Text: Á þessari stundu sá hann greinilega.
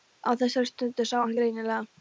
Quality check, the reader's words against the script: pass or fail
pass